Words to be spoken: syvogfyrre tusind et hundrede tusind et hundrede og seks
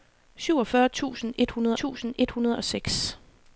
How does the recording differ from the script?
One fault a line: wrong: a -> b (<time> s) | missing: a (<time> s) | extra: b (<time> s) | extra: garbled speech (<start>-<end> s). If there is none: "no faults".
no faults